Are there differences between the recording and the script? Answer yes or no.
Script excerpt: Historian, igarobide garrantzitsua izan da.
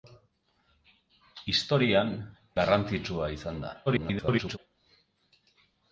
yes